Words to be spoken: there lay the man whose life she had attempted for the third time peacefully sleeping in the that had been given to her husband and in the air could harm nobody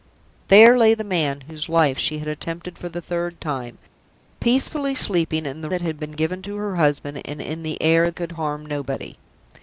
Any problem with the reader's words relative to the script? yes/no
no